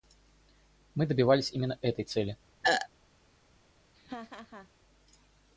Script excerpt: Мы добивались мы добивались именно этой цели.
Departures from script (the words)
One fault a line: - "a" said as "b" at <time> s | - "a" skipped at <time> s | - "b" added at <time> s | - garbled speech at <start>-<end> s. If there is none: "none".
- "мы добивались" skipped at 1.5 s